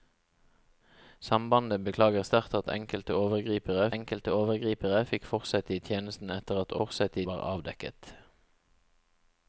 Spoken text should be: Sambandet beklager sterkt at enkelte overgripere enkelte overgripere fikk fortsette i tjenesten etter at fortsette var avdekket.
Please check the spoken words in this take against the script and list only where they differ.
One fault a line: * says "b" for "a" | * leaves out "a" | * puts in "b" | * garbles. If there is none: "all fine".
all fine